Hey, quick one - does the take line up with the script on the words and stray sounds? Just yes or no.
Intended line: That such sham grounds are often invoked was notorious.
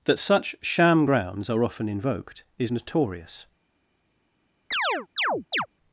no